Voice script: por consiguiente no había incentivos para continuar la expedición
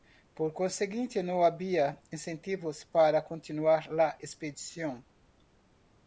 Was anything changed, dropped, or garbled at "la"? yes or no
no